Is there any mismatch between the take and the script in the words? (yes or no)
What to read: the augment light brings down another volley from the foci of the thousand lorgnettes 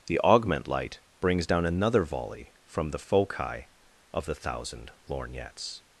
no